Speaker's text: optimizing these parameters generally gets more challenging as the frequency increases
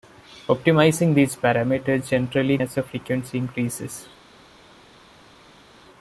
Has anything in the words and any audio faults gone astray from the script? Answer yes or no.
yes